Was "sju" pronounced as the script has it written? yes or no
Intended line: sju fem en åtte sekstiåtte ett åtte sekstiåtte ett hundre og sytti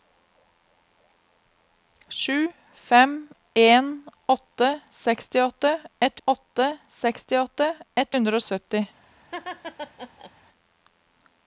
yes